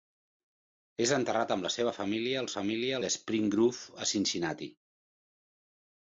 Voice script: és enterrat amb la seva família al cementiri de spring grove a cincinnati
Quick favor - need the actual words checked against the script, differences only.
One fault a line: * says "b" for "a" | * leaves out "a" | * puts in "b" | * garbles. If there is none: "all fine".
* says "família" for "cementiri"